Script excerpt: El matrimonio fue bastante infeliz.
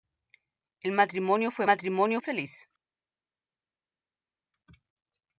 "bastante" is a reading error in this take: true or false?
true